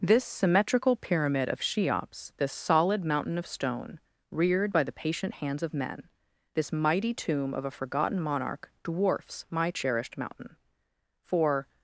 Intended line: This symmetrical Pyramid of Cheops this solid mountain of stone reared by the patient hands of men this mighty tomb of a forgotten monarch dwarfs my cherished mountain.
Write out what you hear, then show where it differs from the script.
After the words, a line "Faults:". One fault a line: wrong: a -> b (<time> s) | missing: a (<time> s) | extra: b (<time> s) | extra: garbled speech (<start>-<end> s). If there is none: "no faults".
This symmetrical Pyramid of Cheops this solid mountain of stone reared by the patient hands of men this mighty tomb of a forgotten monarch dwarfs my cherished mountain. For
Faults:
extra: For (11.2 s)